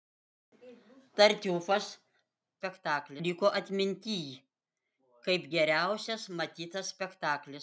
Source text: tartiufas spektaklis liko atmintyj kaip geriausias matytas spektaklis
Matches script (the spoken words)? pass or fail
pass